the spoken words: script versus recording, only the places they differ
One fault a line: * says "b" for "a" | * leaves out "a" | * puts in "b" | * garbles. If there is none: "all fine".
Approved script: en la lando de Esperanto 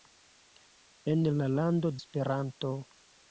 * leaves out "de"